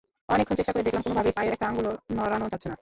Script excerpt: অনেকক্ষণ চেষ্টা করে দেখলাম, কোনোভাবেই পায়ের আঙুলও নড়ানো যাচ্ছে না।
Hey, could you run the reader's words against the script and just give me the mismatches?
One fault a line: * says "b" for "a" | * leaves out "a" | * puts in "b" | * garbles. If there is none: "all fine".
* puts in "একটা"